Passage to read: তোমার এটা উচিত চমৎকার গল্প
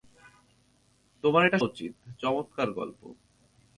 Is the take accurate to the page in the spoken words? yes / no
yes